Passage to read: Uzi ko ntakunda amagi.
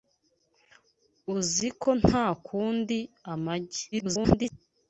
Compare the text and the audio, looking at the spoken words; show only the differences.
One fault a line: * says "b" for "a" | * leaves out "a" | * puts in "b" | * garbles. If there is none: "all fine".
* garbles